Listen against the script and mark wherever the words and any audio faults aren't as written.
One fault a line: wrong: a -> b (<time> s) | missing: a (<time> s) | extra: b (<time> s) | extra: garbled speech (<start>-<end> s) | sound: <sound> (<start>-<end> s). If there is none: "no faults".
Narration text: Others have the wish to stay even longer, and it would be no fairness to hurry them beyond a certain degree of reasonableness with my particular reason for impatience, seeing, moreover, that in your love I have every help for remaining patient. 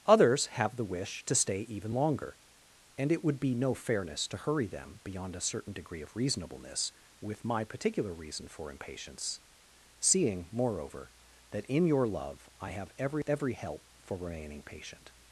extra: every (13.3 s)